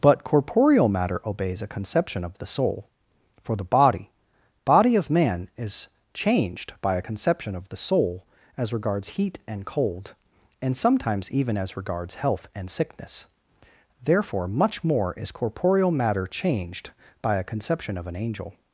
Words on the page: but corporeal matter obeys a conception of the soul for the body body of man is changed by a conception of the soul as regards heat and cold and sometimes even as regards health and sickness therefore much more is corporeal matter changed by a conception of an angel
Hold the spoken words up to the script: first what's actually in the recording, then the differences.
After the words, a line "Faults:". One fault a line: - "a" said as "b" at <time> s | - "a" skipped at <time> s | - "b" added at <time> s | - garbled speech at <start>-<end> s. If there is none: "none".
but corporeal matter obeys a conception of the soul for the body body of man is changed by a conception of the soul as regards heat and cold and sometimes even as regards health and sickness therefore much more is corporeal matter changed by a conception of an angel
Faults:
none